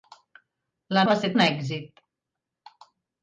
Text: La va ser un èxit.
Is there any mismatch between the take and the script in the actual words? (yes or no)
no